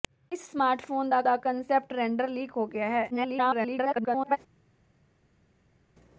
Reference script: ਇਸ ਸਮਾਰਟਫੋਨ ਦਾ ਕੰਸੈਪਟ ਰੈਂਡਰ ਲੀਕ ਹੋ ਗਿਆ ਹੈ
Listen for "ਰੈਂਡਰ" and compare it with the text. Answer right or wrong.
right